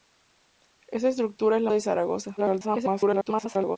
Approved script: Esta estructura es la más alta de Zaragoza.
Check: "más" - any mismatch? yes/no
yes